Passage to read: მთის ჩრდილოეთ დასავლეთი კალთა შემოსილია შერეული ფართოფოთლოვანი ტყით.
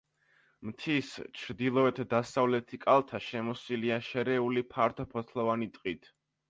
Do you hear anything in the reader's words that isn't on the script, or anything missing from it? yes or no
no